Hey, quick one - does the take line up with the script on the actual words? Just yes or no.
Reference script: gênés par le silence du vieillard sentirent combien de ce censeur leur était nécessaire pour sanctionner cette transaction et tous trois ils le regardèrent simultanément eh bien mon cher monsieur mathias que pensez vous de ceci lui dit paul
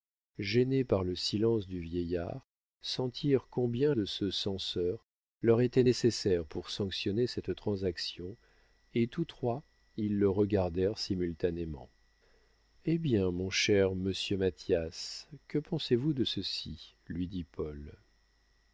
yes